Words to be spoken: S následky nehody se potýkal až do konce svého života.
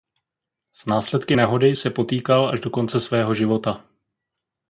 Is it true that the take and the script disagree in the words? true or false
false